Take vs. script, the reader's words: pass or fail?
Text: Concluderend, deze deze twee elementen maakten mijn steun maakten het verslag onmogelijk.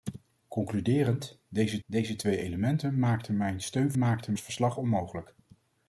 pass